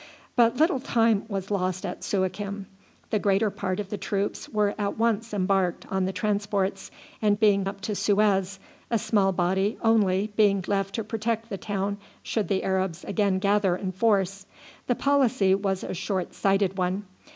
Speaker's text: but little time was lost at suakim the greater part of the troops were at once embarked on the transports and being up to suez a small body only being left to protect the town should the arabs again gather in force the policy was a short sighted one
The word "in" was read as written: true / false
true